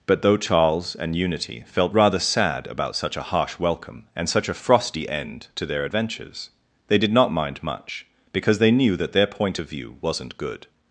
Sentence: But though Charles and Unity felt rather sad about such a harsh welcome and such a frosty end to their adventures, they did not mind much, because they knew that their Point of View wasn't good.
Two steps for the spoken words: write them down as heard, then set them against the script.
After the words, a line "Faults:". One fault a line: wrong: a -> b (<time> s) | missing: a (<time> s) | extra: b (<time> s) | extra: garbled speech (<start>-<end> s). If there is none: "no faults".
But though Charles and Unity felt rather sad about such a harsh welcome and such a frosty end to their adventures, they did not mind much, because they knew that their Point of View wasn't good.
Faults:
no faults